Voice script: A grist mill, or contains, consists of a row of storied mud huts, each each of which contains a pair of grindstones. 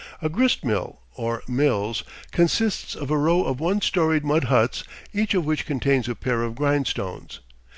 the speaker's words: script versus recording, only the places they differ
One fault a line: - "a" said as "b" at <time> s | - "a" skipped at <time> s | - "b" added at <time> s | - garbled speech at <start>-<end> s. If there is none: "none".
- "contains" said as "mills" at 1.5 s
- "one" added at 3.6 s
- "each" skipped at 5.3 s